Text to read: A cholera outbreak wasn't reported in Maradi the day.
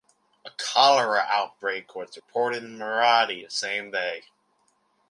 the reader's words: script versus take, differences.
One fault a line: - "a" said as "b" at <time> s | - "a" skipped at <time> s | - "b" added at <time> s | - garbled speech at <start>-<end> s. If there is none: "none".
- "wasn't" said as "was" at 1.9 s
- "same" added at 3.5 s